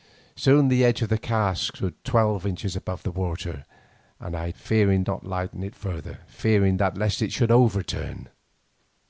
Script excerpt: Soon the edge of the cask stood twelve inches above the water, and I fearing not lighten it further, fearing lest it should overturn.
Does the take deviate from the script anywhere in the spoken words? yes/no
no